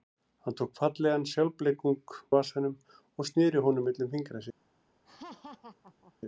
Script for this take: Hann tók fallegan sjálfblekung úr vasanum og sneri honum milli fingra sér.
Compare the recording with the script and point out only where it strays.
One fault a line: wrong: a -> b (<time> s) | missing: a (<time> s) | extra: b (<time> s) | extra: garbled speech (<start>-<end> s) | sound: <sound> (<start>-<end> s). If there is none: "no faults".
missing: úr (2.1 s)
sound: laugh (5.0-6.1 s)